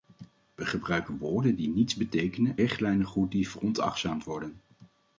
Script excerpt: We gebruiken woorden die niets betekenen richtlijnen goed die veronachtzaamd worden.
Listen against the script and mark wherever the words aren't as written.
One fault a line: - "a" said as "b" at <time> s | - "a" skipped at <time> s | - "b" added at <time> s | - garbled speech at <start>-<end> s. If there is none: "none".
none